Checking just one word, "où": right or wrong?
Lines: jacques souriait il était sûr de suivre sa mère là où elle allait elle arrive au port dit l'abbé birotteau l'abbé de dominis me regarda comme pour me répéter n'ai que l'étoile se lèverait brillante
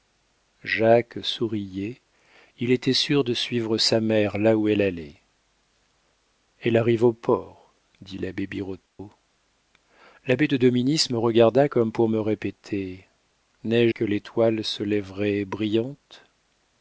right